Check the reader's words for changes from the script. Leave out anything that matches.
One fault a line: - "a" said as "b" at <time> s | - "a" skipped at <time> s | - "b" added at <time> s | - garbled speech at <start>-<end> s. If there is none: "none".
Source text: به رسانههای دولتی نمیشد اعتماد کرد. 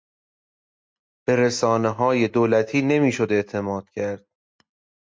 none